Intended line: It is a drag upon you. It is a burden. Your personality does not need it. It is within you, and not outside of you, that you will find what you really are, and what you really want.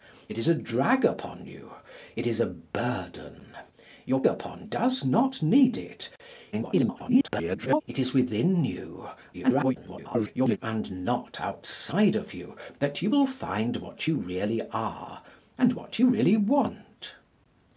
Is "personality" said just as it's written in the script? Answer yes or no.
no